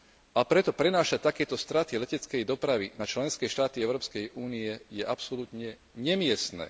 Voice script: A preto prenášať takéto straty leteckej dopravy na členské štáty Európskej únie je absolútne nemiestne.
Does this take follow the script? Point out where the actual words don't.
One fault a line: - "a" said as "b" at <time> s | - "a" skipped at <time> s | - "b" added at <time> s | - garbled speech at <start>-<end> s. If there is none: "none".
none